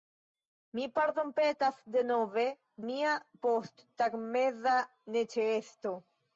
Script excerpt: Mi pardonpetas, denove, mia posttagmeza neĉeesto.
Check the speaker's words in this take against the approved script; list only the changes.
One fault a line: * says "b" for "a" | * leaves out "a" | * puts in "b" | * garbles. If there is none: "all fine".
all fine